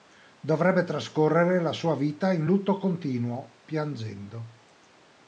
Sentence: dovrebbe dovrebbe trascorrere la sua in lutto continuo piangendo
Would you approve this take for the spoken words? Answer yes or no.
no